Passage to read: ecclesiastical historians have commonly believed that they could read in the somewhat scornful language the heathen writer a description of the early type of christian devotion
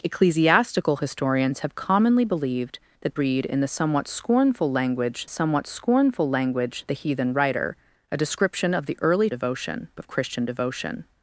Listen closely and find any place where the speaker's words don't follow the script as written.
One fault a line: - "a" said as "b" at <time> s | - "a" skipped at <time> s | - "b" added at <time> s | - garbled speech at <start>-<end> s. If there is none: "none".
- "they could" skipped at 3.2 s
- "somewhat scornful language" added at 5.3 s
- "type" said as "devotion" at 9.3 s